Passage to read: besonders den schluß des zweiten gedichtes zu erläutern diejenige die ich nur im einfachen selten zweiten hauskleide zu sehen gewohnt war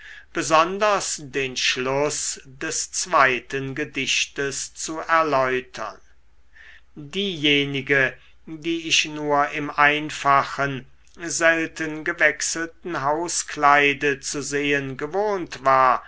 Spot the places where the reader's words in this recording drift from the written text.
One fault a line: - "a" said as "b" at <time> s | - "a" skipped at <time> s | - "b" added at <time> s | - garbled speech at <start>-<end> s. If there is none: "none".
- "zweiten" said as "gewechselten" at 12.0 s